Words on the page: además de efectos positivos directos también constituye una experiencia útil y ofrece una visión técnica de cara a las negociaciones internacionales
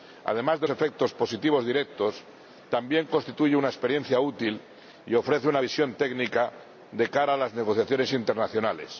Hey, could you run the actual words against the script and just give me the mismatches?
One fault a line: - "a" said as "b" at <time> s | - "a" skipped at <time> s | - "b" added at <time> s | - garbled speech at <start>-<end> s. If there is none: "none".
none